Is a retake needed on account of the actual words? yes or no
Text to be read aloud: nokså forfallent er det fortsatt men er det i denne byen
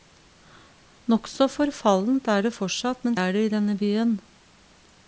no